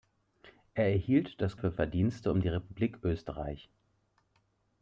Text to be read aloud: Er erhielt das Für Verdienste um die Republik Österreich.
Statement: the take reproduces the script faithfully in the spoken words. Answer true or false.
true